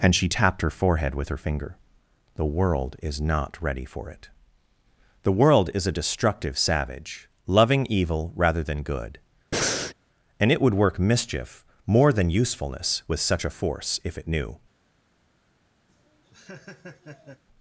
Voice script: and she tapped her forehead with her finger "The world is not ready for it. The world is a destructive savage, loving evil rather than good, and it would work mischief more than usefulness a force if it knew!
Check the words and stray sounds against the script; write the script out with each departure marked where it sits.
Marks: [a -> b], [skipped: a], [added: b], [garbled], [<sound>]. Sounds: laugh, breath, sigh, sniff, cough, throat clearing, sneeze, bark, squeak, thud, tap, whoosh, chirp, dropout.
and she tapped her forehead with her finger "The world is not ready for it. The world is a destructive savage, loving evil rather than good, [breath] and it would work mischief more than usefulness [added: with such] a force if it knew! [laugh]